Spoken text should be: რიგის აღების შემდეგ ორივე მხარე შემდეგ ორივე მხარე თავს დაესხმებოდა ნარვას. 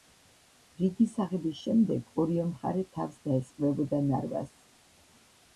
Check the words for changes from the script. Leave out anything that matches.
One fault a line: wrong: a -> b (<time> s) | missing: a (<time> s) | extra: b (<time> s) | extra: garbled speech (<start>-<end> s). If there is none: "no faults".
missing: შემდეგ ორივე მხარე (2.8 s)